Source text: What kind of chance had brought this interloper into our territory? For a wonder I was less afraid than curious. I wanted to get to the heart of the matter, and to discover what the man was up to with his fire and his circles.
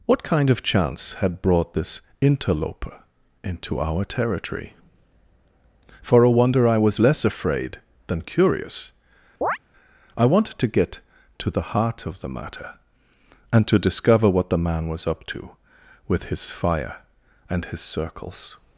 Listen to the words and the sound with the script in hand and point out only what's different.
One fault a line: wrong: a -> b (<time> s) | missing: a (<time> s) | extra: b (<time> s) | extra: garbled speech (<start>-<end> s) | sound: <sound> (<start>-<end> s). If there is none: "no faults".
sound: chirp (9.4-9.6 s)